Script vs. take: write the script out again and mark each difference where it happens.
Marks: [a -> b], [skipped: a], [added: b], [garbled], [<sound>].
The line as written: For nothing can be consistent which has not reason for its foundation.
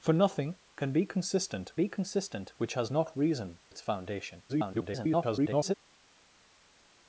For nothing can be consistent [added: be consistent] which has not reason [skipped: for] its foundation. [garbled]